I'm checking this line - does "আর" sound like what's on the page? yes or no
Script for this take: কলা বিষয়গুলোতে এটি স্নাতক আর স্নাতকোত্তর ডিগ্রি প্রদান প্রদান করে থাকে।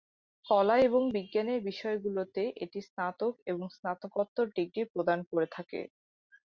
no